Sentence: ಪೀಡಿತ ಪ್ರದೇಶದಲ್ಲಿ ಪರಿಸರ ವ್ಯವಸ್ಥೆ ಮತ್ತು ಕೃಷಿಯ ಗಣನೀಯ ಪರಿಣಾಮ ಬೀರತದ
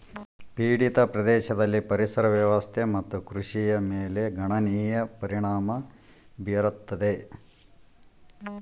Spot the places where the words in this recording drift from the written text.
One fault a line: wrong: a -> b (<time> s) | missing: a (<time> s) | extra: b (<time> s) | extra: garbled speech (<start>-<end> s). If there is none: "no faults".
extra: ಮೇಲೆ (3.8 s)